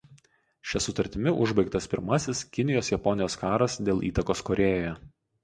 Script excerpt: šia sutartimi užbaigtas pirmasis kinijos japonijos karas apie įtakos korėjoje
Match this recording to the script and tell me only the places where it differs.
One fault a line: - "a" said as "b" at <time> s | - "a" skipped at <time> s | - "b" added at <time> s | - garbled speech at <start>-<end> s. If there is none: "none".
- "apie" said as "dėl" at 3.9 s